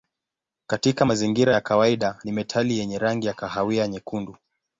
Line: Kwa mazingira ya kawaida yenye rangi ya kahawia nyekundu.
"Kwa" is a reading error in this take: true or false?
true